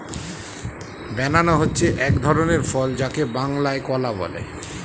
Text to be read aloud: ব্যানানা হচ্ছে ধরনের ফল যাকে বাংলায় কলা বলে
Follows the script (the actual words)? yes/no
no